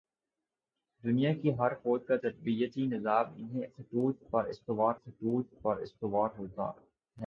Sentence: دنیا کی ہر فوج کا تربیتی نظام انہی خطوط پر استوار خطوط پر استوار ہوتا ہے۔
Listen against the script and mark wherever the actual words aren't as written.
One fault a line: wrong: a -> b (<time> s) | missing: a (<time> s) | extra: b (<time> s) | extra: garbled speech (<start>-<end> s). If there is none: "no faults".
no faults